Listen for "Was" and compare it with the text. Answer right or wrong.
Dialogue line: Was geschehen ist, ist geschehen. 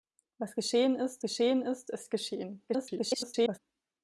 right